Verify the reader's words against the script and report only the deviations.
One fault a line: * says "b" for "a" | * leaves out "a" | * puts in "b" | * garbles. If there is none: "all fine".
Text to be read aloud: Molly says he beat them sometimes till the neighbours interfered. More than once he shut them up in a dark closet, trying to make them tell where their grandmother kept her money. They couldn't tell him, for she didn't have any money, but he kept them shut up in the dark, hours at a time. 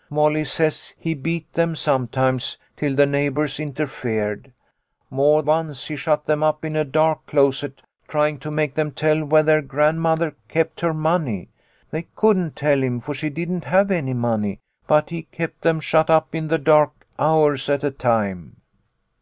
* leaves out "than"